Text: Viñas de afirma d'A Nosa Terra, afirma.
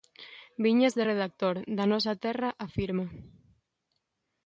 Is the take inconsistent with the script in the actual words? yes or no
yes